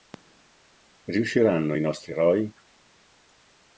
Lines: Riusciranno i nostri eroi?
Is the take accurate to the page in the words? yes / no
yes